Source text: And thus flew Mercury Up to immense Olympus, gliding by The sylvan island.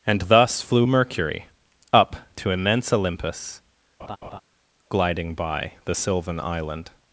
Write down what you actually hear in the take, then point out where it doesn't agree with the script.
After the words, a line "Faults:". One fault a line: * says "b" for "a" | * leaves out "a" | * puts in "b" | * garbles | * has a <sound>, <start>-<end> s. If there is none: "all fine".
And thus flew Mercury Up to immense Olympus, gliding by The sylvan island.
Faults:
* has a laugh, 4.0-4.4 s